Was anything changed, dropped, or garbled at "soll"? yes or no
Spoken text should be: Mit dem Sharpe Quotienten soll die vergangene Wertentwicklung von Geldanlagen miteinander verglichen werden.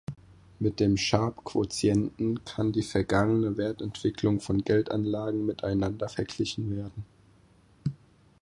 yes